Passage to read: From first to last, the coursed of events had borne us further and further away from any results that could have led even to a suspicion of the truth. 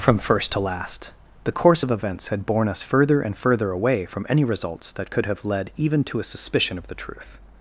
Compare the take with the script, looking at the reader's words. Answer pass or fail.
fail